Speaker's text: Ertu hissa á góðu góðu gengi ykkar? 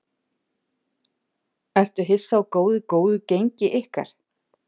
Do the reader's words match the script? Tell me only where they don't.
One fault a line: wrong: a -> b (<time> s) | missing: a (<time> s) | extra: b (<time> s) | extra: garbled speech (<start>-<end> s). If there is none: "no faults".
no faults